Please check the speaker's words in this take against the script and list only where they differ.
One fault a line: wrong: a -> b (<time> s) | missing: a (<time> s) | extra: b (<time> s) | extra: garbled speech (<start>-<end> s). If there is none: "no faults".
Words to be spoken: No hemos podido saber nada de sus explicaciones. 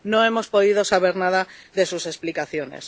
no faults